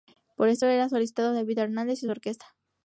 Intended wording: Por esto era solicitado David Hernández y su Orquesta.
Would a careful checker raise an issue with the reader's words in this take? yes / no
no